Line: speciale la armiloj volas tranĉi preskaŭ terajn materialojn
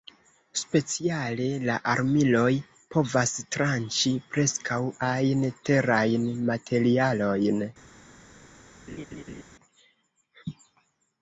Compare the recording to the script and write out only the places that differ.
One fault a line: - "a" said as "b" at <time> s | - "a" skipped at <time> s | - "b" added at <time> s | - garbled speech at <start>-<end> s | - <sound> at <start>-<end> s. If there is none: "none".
- "volas" said as "povas" at 3.0 s
- "ajn" added at 5.1 s
- laugh at 8.9-9.4 s